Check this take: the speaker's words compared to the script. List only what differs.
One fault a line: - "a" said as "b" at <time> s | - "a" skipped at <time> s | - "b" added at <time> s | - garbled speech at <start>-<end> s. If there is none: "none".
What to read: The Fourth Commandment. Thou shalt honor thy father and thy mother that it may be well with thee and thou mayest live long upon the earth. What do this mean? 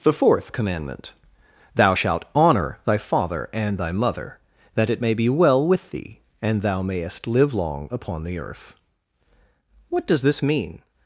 - "do" said as "does" at 10.0 s